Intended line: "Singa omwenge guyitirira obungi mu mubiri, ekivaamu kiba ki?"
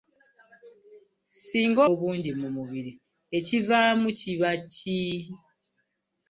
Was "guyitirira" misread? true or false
true